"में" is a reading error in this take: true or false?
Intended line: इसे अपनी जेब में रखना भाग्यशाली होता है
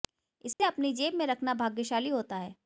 false